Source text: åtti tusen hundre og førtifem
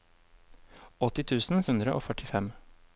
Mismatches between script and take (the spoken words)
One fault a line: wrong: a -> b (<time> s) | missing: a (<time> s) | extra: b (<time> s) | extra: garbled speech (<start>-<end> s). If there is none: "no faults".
no faults